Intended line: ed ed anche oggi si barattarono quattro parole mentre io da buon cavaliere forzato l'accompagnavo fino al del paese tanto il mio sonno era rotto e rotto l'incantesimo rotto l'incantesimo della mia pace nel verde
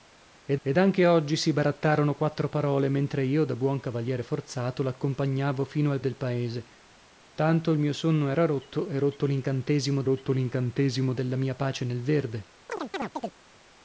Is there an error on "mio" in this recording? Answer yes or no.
no